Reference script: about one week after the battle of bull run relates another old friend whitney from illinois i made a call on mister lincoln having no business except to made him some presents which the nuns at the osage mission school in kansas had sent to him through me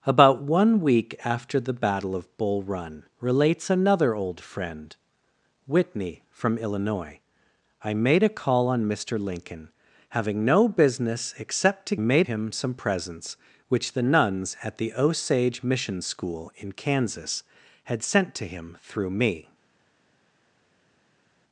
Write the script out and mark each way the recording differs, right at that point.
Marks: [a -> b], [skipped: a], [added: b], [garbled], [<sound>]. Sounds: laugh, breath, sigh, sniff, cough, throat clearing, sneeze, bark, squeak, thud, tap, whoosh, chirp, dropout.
about one week after the battle of bull run relates another old friend whitney from illinois i made a call on mister lincoln having no business except to made him some presents which the nuns at the osage mission school in kansas had sent to him through me